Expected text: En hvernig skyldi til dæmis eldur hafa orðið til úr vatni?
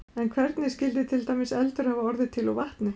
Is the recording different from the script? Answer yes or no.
no